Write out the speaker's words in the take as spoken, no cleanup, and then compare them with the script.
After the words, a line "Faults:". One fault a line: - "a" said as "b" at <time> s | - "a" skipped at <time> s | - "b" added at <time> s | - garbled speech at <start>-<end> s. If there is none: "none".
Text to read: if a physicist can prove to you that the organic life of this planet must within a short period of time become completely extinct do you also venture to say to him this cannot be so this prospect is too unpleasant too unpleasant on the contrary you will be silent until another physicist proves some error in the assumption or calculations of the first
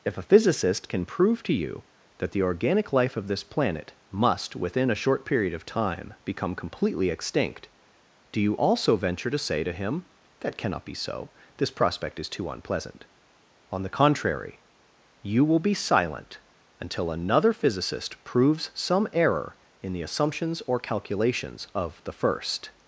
if a physicist can prove to you that the organic life of this planet must within a short period of time become completely extinct do you also venture to say to him that cannot be so this prospect is too unpleasant on the contrary you will be silent until another physicist proves some error in the assumptions or calculations of the first
Faults:
- "this" said as "that" at 10.4 s
- "too unpleasant" skipped at 13.0 s
- "assumption" said as "assumptions" at 20.0 s